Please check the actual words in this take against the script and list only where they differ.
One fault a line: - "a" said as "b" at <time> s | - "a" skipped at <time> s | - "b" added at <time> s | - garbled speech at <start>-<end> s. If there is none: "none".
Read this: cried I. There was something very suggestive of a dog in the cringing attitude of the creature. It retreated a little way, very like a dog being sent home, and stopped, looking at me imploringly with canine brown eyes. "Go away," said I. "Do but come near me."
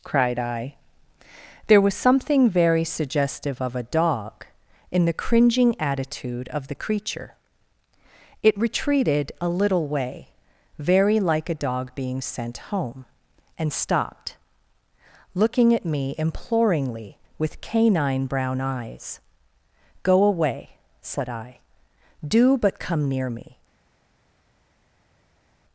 none